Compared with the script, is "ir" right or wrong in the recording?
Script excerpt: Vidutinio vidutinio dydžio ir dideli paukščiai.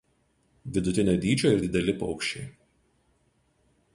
right